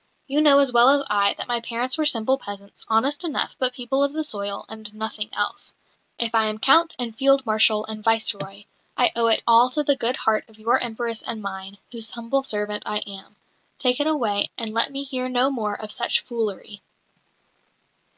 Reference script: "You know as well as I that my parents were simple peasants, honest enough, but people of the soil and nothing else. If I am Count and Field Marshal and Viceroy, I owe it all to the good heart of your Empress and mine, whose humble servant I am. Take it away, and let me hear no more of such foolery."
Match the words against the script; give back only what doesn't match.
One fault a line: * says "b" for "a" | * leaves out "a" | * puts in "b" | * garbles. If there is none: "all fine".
all fine